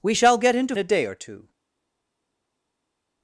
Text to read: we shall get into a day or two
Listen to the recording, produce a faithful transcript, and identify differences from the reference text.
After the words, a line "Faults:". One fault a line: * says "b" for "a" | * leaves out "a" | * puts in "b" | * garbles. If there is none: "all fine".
we shall get into a day or two
Faults:
all fine